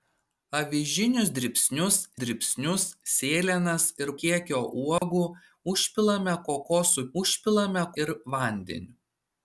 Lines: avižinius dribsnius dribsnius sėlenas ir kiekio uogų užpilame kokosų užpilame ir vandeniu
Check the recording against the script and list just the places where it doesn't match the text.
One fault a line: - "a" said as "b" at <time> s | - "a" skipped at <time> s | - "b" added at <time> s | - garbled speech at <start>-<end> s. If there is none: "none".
none